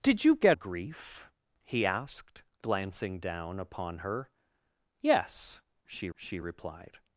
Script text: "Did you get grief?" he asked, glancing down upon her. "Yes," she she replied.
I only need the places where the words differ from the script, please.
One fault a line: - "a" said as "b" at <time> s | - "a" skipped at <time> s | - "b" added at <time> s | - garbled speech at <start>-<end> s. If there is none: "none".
none